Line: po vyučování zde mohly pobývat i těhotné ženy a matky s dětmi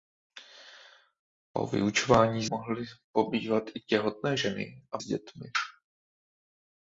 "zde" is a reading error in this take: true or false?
true